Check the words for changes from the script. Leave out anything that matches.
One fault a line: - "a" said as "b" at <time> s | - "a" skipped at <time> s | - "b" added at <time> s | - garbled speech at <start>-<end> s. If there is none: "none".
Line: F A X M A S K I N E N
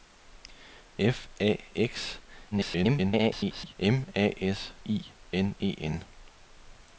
- garbled speech at 2.5-3.8 s
- "K" skipped at 4.7 s